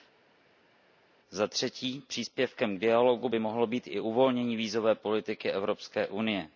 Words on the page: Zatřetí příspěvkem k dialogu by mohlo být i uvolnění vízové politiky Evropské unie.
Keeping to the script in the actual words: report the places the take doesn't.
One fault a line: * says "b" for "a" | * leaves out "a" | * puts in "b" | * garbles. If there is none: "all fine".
all fine